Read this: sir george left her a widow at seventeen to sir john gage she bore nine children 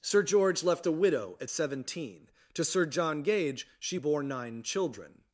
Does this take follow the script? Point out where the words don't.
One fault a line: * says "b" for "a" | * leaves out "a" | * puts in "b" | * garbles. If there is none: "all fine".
* leaves out "her"